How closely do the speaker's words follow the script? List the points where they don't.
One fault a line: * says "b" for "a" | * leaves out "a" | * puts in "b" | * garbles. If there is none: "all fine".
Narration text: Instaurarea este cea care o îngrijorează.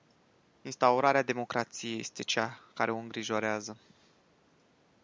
* puts in "democrației"